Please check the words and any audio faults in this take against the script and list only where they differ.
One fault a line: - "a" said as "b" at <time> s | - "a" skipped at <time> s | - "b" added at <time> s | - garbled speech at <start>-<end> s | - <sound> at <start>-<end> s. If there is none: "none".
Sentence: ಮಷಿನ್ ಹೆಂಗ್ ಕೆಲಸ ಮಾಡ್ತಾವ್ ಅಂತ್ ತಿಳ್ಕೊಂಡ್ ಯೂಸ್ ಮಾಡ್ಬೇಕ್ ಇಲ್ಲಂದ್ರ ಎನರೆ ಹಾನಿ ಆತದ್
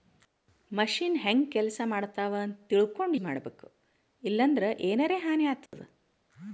- "ಯೂಸ್" skipped at 3.2 s
- dropout at 5.7-5.7 s